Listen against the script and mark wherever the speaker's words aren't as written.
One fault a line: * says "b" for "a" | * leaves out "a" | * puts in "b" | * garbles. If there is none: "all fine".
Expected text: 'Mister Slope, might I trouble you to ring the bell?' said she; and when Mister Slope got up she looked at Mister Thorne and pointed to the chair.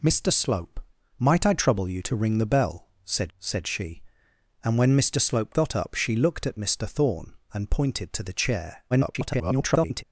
* puts in "said"
* garbles